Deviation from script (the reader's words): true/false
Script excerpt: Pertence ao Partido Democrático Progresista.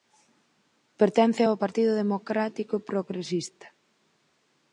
false